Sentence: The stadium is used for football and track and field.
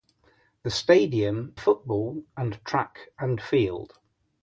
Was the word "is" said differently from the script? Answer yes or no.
yes